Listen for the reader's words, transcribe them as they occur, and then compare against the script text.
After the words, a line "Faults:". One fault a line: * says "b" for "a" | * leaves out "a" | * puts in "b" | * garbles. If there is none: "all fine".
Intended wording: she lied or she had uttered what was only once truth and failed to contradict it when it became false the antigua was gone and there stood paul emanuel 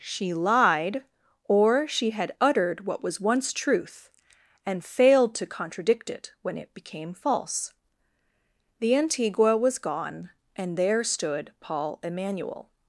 she lied or she had uttered what was once truth and failed to contradict it when it became false the antigua was gone and there stood paul emanuel
Faults:
* leaves out "only"